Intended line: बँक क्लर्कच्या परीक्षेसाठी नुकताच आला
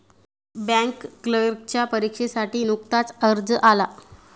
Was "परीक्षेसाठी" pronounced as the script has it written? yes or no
yes